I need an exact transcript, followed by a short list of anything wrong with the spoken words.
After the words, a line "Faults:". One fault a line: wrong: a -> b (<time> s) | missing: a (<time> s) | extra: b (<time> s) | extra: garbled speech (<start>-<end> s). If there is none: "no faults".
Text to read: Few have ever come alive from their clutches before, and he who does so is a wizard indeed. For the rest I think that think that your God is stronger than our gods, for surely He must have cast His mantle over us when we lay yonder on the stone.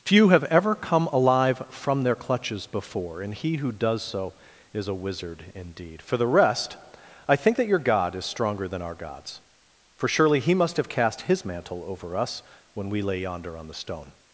Few have ever come alive from their clutches before, and he who does so is a wizard indeed. For the rest I think that your God is stronger than our gods, for surely He must have cast His mantle over us when we lay yonder on the stone.
Faults:
missing: think that (7.7 s)